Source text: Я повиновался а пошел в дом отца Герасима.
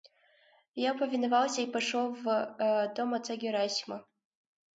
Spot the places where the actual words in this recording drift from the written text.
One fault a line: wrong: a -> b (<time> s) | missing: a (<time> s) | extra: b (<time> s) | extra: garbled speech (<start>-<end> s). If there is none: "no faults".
wrong: а -> и (1.6 s)